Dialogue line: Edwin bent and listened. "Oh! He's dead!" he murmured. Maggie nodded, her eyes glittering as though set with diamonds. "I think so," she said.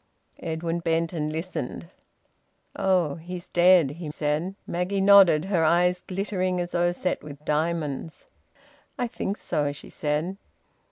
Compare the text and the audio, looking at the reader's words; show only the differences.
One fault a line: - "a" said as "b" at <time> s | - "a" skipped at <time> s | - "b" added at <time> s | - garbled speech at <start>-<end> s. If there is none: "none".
- "murmured" said as "said" at 4.1 s